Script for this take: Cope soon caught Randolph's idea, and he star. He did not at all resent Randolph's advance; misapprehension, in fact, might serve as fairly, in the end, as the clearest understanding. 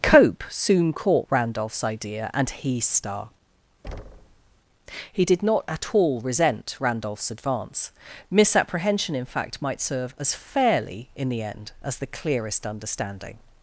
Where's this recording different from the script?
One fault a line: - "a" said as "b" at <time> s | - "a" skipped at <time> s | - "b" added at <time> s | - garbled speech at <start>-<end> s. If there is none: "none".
none